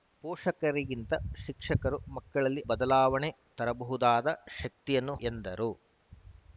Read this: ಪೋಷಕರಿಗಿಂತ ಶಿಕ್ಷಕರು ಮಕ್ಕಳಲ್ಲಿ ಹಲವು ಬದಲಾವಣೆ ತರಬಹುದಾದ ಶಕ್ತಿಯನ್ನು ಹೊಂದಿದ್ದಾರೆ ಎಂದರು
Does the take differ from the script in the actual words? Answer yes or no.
yes